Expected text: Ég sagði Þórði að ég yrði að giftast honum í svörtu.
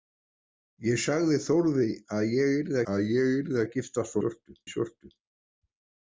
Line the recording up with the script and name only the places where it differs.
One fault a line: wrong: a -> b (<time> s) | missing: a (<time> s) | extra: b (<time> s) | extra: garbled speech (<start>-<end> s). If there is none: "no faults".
extra: ég yrði að (3.2 s)
wrong: honum -> svörtu (4.2 s)